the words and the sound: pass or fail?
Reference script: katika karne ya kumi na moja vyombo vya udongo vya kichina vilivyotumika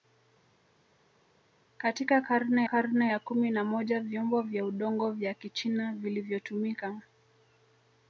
fail